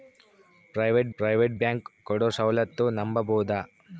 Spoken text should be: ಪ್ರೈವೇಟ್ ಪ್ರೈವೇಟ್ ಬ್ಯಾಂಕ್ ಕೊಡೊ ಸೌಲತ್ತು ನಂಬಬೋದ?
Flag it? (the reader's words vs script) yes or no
no